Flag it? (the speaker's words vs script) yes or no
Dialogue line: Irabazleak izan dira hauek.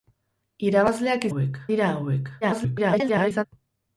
yes